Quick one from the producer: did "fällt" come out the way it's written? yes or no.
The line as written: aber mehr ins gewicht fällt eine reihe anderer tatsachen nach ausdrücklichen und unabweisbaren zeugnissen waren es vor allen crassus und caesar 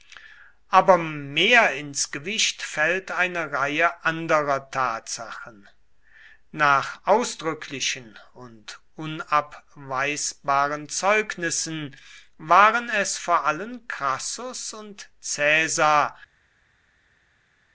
yes